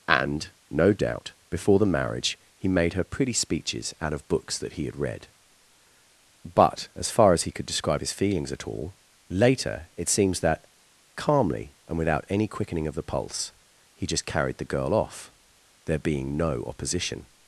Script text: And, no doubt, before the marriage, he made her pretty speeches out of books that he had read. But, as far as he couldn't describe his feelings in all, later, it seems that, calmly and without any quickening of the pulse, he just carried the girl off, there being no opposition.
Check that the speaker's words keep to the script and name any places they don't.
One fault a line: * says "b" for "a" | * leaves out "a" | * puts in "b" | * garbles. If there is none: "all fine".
* says "could" for "couldn't"
* says "at" for "in"